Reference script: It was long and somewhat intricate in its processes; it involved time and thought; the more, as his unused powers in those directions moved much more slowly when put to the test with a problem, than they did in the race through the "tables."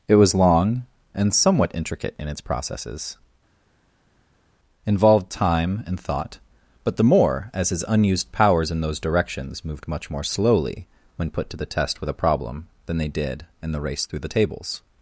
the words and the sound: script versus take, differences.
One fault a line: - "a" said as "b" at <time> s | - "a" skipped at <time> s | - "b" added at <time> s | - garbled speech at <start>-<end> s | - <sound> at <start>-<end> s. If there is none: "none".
- "it" skipped at 3.2 s
- "but" added at 6.8 s